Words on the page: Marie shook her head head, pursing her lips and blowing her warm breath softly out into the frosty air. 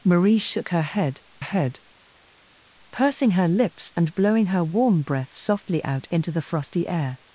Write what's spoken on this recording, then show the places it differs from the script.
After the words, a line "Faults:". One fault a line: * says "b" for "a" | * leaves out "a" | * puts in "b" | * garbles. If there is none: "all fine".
Marie shook her head head, pursing her lips and blowing her warm breath softly out into the frosty air.
Faults:
all fine